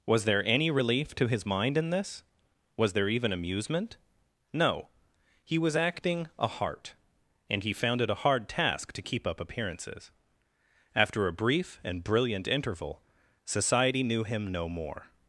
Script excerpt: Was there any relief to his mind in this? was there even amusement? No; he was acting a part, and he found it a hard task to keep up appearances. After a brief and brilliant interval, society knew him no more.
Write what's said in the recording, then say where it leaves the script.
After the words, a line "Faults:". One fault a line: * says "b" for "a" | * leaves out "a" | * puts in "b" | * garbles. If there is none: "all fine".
Was there any relief to his mind in this? was there even amusement? No; he was acting a heart, and he found it a hard task to keep up appearances. After a brief and brilliant interval, society knew him no more.
Faults:
* says "heart" for "part"